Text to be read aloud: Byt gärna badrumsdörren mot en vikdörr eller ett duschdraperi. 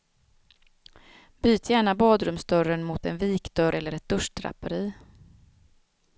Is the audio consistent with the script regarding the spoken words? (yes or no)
yes